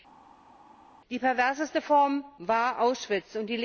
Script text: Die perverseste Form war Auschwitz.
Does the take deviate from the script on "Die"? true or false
false